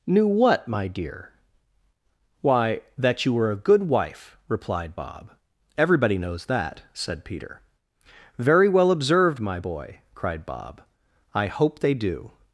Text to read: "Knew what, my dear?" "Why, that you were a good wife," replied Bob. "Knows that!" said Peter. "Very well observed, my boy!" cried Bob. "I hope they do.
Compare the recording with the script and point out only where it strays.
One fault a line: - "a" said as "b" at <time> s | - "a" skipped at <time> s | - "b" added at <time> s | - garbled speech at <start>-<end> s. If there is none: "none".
- "Everybody" added at 5.8 s